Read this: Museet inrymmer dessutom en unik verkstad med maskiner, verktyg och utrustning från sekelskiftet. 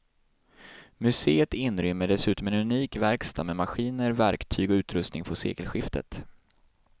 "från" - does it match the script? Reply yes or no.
yes